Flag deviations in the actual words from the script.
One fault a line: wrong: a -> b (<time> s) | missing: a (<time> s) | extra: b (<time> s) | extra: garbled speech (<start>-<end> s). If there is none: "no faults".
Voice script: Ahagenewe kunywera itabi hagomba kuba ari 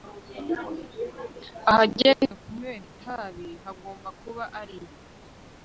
no faults